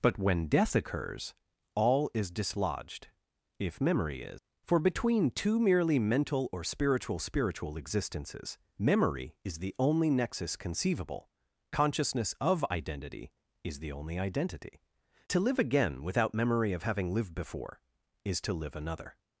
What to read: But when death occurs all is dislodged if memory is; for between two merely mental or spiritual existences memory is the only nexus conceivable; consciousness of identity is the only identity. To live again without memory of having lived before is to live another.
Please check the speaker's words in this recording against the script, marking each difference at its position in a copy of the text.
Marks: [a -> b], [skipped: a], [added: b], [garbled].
But when death occurs all is dislodged if memory is; for between two merely mental or spiritual [added: spiritual] existences memory is the only nexus conceivable; consciousness of identity is the only identity. To live again without memory of having lived before is to live another.